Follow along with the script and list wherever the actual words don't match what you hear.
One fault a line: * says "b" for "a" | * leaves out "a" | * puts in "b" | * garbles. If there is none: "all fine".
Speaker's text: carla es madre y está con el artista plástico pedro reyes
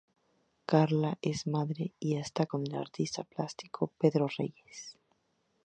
all fine